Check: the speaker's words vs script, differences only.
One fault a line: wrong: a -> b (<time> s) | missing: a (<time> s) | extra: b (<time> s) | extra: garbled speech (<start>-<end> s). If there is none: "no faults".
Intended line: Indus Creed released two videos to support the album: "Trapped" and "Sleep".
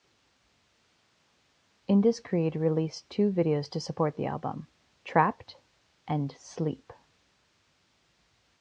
no faults